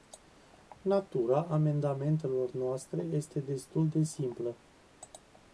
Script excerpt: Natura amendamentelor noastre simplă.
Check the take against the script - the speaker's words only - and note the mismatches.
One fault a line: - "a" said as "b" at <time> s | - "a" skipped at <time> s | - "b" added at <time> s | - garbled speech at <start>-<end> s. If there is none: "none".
- "este destul de" added at 3.0 s